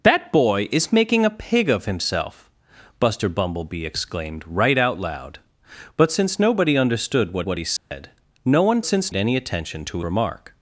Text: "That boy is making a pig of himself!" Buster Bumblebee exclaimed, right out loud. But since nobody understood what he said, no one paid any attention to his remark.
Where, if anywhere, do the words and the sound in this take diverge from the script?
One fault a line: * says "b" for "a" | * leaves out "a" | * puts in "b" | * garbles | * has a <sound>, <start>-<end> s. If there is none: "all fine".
* puts in "what"
* has a dropout, 7.8-7.9 s
* says "since" for "paid"
* leaves out "his"